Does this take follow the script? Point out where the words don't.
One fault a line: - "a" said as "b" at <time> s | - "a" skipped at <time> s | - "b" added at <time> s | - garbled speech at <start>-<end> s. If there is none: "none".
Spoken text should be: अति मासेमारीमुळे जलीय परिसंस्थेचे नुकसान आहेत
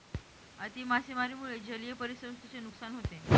- "आहेत" said as "होते" at 2.9 s